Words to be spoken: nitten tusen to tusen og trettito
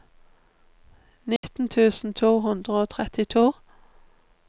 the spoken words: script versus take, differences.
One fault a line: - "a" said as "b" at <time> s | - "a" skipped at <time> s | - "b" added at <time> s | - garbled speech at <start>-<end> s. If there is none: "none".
- "tusen" said as "hundre" at 2.4 s